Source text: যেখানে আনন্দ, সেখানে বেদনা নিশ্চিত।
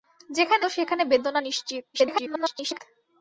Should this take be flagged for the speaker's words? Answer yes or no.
yes